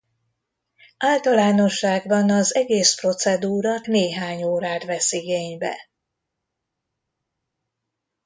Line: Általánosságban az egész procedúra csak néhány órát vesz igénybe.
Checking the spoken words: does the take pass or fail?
fail